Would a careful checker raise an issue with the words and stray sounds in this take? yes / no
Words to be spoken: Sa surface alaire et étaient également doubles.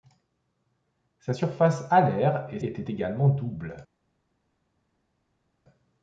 no